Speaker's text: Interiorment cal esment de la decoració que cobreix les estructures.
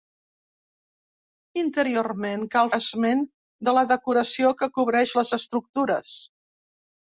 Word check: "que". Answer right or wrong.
right